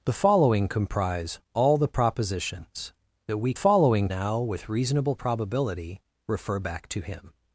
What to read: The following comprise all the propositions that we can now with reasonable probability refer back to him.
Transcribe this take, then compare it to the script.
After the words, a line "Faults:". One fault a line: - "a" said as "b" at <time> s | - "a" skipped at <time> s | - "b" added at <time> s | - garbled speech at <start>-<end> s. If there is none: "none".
The following comprise all the propositions that we following now with reasonable probability refer back to him.
Faults:
- "can" said as "following" at 3.5 s